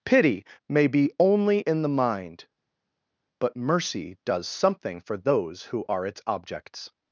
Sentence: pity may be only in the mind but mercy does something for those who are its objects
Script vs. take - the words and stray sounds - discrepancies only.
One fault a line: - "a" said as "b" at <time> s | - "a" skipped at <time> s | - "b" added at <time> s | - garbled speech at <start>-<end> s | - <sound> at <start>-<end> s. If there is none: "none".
none